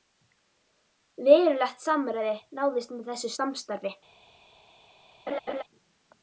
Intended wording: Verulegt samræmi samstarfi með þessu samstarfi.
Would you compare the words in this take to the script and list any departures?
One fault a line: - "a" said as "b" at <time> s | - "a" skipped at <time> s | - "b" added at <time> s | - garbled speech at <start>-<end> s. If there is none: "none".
- "samstarfi" said as "náðist" at 2.6 s